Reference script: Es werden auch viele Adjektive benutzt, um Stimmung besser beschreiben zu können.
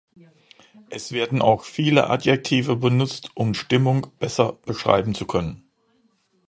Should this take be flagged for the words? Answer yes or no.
no